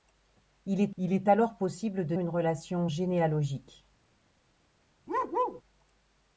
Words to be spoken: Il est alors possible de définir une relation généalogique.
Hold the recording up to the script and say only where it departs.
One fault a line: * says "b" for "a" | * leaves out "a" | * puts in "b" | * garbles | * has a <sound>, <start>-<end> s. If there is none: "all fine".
* puts in "il est"
* leaves out "définir"
* has a bark, 5.1-5.6 s